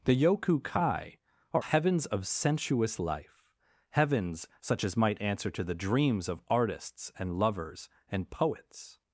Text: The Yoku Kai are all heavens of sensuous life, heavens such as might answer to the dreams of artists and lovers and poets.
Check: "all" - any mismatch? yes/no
yes